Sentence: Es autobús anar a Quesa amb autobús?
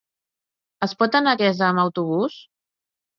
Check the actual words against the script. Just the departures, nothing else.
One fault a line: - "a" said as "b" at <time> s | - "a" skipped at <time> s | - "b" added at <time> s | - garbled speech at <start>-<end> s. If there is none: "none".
- "autobús" said as "pot" at 1.0 s